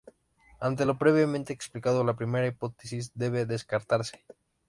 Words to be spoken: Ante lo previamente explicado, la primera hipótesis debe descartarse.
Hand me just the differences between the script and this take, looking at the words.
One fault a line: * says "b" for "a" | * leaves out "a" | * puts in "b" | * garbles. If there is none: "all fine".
all fine